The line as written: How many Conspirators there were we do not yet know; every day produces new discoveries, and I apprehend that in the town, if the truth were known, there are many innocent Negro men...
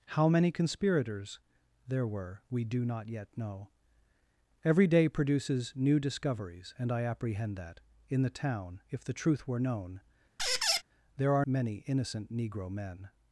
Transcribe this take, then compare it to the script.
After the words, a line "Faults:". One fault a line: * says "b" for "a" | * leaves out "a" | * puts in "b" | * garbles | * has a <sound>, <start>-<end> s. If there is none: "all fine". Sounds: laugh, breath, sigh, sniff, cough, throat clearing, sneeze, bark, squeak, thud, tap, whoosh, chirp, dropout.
How many Conspirators there were we do not yet know; every day produces new discoveries, and I apprehend that in the town, if the truth were known, there are many innocent Negro men...
Faults:
* has a squeak, 10.4-10.8 s